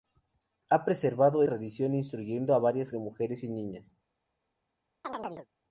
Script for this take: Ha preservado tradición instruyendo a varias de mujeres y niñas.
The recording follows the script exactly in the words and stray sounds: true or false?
false